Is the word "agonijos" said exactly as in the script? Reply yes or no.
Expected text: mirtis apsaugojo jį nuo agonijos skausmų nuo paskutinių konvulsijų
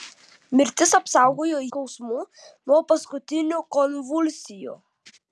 no